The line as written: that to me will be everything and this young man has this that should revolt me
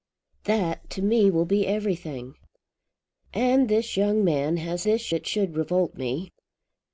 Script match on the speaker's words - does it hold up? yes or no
yes